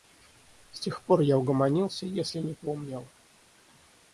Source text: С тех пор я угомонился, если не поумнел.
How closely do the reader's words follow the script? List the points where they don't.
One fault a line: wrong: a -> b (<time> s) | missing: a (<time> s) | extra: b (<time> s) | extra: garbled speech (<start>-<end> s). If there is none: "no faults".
no faults